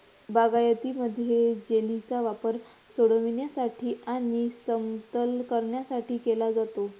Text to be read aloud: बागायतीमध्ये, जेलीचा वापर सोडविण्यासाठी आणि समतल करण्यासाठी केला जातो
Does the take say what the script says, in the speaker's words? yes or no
yes